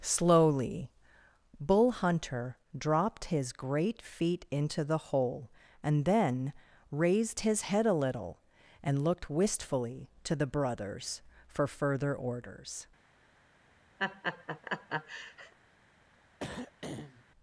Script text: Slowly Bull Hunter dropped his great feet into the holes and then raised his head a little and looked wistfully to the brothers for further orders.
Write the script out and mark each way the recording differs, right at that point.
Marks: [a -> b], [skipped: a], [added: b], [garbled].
Slowly Bull Hunter dropped his great feet into the [holes -> hole] and then raised his head a little and looked wistfully to the brothers for further orders.